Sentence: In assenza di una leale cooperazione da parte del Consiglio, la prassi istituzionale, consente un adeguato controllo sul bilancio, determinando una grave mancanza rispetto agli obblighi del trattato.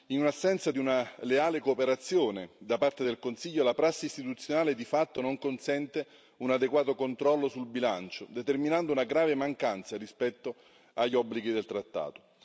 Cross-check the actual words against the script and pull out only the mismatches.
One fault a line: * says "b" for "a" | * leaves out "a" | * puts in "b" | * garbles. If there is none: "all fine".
* puts in "di fatto non"